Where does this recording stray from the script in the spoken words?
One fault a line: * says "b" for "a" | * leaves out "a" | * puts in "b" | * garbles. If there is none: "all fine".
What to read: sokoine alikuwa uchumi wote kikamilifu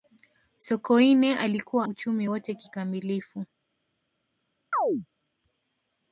all fine